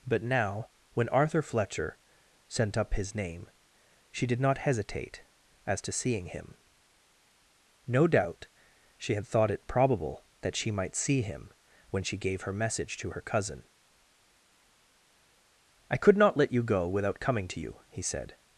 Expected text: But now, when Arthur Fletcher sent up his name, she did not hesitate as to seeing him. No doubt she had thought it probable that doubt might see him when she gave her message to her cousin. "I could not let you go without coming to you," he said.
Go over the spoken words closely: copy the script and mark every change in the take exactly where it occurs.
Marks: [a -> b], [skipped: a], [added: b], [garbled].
But now, when Arthur Fletcher sent up his name, she did not hesitate as to seeing him. No doubt she had thought it probable that [doubt -> she] might see him when she gave her message to her cousin. "I could not let you go without coming to you," he said.